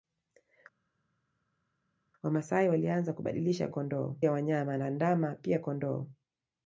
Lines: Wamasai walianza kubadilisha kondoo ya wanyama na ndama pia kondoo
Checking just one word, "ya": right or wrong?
right